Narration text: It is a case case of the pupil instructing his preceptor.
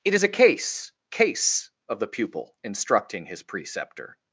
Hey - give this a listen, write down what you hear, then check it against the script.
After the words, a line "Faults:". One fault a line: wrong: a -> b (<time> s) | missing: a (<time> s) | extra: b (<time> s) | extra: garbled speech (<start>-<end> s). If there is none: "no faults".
It is a case case of the pupil instructing his preceptor.
Faults:
no faults